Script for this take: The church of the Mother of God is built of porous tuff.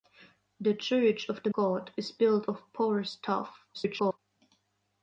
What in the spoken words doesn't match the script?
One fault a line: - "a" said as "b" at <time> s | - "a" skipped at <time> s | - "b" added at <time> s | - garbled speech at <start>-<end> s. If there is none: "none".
- "Mother of" skipped at 1.5 s
- garbled speech at 3.7-4.2 s